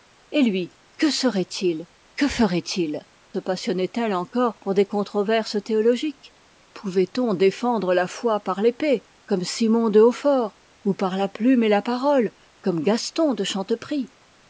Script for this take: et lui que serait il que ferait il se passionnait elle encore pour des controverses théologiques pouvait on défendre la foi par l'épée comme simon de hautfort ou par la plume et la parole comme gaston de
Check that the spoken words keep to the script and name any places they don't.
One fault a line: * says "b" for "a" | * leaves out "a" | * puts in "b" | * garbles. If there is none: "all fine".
all fine